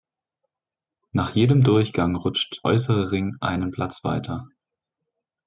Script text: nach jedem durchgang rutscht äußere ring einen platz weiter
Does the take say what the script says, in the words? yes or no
yes